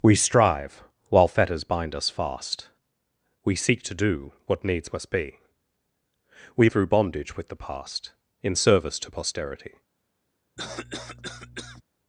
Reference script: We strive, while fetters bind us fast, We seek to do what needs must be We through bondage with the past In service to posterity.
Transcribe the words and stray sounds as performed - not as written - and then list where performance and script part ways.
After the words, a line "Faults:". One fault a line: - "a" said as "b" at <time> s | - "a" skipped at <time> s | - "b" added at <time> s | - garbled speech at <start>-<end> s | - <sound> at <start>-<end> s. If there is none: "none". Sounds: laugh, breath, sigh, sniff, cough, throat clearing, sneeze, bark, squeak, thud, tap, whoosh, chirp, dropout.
We strive, while fetters bind us fast, We seek to do what needs must be We through bondage with the past In service to posterity.
Faults:
- cough at 10.6-11.8 s